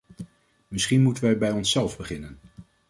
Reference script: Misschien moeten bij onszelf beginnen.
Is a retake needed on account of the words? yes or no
yes